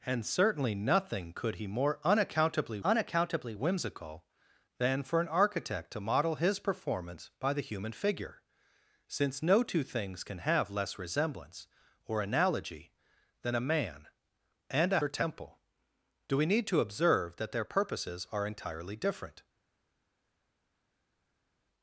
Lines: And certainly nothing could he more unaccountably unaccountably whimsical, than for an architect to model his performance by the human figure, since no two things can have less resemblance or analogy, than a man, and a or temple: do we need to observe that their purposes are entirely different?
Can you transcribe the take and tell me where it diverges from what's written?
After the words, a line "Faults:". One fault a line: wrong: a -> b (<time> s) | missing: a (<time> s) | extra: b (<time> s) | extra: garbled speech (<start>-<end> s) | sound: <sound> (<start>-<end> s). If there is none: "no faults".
And certainly nothing could he more unaccountably unaccountably whimsical, than for an architect to model his performance by the human figure, since no two things can have less resemblance or analogy, than a man, and a or temple: do we need to observe that their purposes are entirely different?
Faults:
no faults